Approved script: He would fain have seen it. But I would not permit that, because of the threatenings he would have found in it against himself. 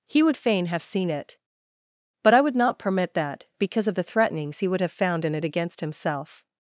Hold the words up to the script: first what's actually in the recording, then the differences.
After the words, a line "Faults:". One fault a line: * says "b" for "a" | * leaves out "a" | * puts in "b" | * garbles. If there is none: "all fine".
He would fain have seen it. But I would not permit that, because of the threatenings he would have found in it against himself.
Faults:
all fine